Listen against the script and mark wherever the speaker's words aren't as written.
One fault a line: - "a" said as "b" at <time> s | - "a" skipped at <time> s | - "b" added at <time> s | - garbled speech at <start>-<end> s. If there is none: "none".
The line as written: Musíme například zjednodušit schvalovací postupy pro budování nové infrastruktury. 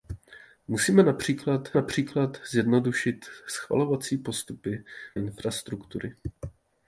- "například" added at 1.7 s
- "pro budování nové" skipped at 4.8 s